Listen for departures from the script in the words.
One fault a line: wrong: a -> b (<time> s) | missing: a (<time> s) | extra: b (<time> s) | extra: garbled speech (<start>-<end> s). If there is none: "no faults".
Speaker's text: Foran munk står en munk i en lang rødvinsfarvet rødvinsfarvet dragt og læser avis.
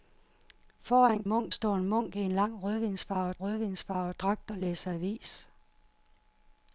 no faults